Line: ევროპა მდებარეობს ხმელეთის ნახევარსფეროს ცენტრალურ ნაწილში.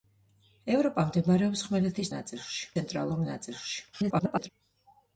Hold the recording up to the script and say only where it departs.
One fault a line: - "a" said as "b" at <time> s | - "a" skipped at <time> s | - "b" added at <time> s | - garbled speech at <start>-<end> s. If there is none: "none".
- "ნახევარსფეროს" said as "ნაწილში" at 2.1 s
- garbled speech at 3.9-4.5 s